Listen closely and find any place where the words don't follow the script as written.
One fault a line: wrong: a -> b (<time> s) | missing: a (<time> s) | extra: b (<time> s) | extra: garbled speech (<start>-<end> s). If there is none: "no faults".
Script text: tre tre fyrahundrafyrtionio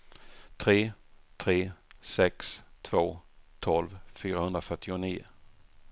extra: sex två tolv (2.0 s)